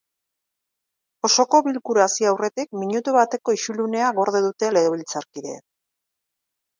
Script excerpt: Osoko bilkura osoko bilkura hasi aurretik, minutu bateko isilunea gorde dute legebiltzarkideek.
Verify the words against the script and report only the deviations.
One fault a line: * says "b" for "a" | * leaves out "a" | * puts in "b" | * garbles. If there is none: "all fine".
* leaves out "osoko bilkura"